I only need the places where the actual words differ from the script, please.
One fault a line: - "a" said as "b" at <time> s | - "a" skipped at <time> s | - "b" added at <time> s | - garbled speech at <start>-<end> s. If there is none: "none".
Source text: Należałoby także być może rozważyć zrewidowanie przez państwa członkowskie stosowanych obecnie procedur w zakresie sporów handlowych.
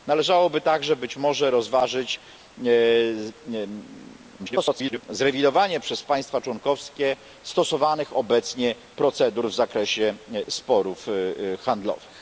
- garbled speech at 4.4-5.0 s